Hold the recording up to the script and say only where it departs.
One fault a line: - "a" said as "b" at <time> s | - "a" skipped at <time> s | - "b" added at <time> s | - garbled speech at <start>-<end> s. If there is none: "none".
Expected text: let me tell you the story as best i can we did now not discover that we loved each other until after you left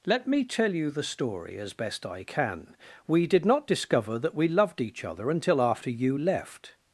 - "now" skipped at 3.5 s